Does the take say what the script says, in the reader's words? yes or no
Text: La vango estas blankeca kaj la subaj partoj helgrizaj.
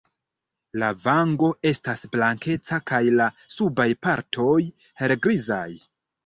yes